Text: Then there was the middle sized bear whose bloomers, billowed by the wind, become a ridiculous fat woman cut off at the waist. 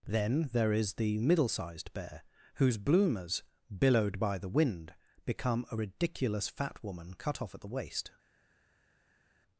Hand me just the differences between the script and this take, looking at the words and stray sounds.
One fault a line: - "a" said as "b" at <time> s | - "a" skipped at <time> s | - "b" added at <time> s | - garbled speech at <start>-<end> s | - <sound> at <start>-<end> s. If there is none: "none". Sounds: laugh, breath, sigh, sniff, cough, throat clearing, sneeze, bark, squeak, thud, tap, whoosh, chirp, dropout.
- "was" said as "is" at 0.7 s